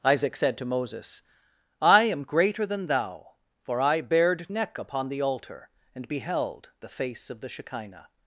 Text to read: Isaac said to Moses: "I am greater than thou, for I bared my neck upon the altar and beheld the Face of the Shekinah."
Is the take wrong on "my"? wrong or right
wrong